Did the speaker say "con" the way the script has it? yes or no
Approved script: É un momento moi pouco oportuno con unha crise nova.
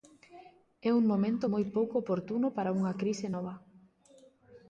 no